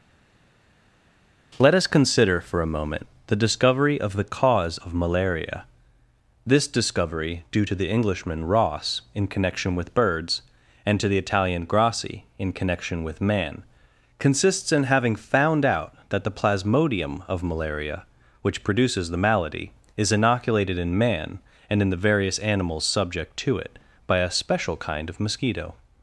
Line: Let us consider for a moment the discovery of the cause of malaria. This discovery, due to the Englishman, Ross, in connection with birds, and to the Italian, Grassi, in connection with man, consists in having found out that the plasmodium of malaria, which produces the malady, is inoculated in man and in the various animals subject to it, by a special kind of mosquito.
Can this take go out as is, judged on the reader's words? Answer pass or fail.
pass